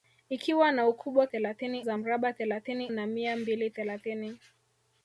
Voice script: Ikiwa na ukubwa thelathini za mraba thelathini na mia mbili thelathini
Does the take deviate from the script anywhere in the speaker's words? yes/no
no